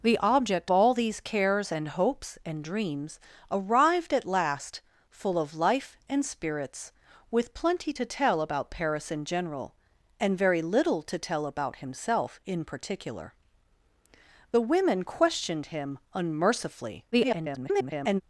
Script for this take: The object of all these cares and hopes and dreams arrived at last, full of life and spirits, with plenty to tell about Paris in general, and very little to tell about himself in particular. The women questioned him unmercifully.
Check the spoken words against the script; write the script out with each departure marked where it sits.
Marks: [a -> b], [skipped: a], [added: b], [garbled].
The object [skipped: of] all these cares and hopes and dreams arrived at last, full of life and spirits, with plenty to tell about Paris in general, and very little to tell about himself in particular. The women questioned him unmercifully. [garbled]